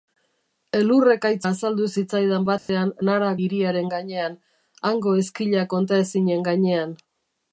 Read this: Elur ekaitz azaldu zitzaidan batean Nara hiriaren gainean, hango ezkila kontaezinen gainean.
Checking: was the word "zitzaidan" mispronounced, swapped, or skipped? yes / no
no